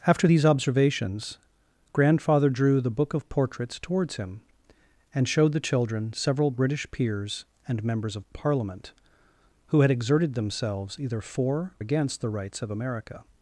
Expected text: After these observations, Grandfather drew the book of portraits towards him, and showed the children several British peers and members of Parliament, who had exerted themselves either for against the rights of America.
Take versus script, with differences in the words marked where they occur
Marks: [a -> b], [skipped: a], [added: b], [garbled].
After these observations, Grandfather drew the book of portraits towards him, and showed the children several British peers and members of Parliament, who had exerted themselves either for against the rights of America.